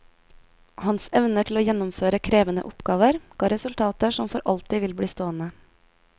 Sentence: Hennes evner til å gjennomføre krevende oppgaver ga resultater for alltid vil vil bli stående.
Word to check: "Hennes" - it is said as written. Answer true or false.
false